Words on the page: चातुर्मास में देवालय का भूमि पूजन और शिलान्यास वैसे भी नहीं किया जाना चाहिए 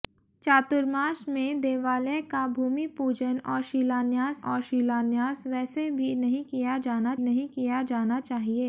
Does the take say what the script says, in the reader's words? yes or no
no